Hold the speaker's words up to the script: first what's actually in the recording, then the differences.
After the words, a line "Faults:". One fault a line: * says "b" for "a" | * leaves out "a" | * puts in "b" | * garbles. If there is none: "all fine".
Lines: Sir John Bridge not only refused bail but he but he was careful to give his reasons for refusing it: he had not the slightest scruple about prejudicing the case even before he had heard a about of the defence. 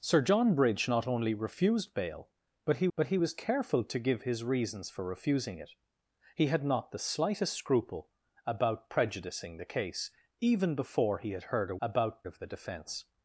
Sir John Bridge not only refused bail but he but he was careful to give his reasons for refusing it: he had not the slightest scruple about prejudicing the case even before he had heard a about of the defence.
Faults:
all fine